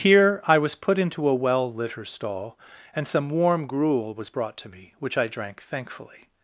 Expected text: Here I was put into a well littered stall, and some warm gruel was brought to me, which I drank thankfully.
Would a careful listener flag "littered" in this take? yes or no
yes